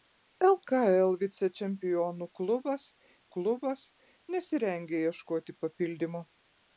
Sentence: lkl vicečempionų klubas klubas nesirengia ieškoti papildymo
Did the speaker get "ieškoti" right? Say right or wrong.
right